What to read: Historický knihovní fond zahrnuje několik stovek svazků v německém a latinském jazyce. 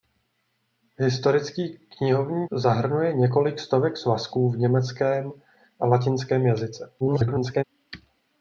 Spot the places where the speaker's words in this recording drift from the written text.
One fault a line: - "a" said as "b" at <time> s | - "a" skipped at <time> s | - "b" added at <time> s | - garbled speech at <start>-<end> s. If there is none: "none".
- "fond" skipped at 2.5 s
- garbled speech at 7.0-7.6 s